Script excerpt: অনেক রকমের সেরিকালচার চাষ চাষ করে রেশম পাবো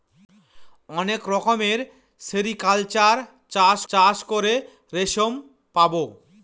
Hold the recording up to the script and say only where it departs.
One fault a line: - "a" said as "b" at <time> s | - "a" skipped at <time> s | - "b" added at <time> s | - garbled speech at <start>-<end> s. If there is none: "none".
none